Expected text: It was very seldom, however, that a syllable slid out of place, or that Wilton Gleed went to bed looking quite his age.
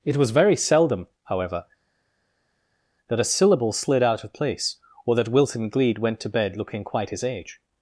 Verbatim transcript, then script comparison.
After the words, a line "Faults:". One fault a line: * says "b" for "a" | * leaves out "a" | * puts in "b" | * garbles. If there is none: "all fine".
It was very seldom, however, that a syllable slid out of place, or that Wilton Gleed went to bed looking quite his age.
Faults:
all fine